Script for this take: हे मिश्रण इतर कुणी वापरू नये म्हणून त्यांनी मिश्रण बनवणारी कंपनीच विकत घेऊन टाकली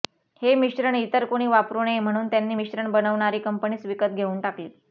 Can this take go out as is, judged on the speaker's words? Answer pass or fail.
pass